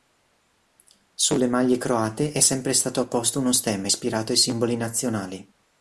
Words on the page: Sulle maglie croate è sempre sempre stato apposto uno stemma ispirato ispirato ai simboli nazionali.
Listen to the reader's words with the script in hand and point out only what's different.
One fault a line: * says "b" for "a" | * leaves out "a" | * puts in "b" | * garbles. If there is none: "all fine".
* leaves out "sempre"
* leaves out "ispirato"